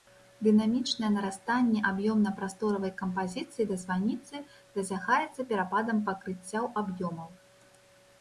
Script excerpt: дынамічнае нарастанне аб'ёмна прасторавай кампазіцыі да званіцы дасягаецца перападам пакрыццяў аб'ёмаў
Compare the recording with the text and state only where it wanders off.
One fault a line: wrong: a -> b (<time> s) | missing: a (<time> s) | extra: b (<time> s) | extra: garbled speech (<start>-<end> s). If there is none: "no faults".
no faults